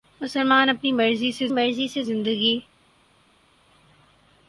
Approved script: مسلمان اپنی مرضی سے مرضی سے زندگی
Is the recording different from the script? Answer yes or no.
no